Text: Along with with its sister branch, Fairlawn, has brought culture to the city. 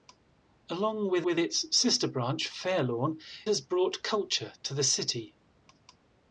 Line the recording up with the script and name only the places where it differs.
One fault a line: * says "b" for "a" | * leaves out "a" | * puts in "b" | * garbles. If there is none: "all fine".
all fine